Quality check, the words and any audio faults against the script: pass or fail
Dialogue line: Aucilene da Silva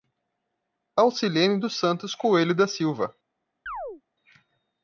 fail